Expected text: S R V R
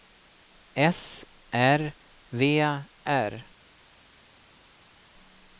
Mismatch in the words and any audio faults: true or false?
false